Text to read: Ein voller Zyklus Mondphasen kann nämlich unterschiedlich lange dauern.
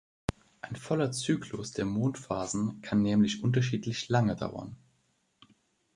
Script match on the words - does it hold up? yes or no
no